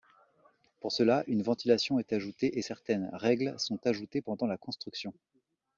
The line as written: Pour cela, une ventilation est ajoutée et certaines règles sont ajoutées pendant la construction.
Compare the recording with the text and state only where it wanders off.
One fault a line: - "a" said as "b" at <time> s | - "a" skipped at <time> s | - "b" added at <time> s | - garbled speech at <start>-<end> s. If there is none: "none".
none